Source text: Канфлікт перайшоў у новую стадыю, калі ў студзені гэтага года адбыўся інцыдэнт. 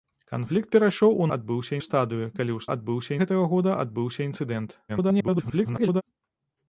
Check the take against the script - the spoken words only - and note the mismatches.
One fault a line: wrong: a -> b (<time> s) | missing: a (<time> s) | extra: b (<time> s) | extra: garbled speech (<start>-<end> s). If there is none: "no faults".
wrong: новую -> адбыўся (1.4 s)
wrong: студзені -> адбыўся (2.8 s)
extra: garbled speech (4.9-6.0 s)